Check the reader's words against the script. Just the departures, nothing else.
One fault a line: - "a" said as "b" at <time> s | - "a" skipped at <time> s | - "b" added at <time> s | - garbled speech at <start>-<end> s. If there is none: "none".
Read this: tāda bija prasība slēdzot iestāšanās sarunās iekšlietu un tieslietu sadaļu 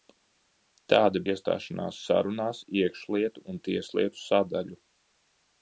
- "bija prasība slēdzot" skipped at 1.2 s